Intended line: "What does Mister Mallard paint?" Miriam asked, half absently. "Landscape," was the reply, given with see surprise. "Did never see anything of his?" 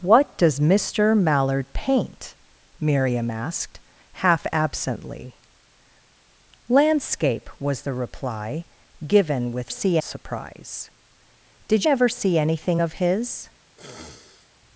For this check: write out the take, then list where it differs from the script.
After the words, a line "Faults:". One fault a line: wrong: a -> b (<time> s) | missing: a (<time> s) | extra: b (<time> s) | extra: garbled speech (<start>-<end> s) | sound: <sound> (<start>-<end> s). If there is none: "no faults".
"What does Mister Mallard paint?" Miriam asked, half absently. "Landscape," was the reply, given with see surprise. "Did never see anything of his?"
Faults:
sound: sniff (13.8-14.5 s)